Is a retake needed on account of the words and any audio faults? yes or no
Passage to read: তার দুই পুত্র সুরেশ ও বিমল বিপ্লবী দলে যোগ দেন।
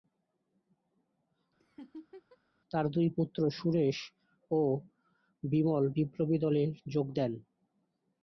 yes